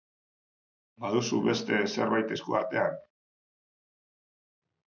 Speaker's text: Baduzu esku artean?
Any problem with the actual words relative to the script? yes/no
yes